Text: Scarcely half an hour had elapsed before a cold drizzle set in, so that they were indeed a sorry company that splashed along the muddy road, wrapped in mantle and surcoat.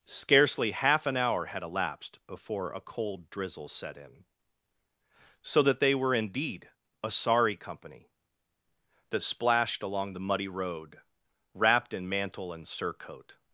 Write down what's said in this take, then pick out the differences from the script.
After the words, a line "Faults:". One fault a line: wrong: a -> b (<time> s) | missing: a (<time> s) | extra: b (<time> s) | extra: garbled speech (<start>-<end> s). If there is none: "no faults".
Scarcely half an hour had elapsed before a cold drizzle set in, so that they were indeed a sorry company that splashed along the muddy road, wrapped in mantle and surcoat.
Faults:
no faults